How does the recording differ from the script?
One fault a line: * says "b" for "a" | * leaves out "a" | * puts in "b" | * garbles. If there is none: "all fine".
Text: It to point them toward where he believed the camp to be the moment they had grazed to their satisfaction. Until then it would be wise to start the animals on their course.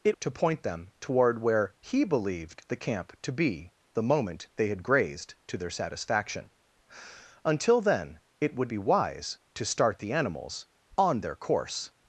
all fine